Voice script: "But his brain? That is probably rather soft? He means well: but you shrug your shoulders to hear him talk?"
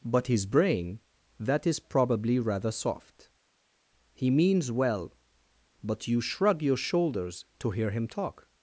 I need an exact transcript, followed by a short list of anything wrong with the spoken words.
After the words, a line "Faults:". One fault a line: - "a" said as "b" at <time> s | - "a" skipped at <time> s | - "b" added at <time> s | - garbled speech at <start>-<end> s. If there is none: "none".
"But his brain? That is probably rather soft? He means well: but you shrug your shoulders to hear him talk?"
Faults:
none